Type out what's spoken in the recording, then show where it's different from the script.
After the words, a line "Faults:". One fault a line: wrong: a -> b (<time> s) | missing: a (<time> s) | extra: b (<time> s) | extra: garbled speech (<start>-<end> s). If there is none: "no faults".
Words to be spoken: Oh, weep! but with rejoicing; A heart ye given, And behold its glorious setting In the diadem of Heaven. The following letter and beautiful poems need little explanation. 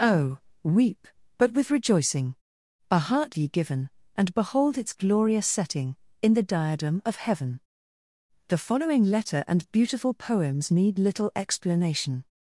Oh, weep! but with rejoicing; A heart ye given, And behold its glorious setting In the diadem of Heaven. The following letter and beautiful poems need little explanation.
Faults:
no faults